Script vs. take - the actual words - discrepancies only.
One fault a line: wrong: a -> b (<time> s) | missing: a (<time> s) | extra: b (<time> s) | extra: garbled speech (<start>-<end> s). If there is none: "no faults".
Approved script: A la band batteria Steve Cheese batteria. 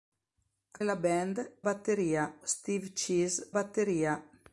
no faults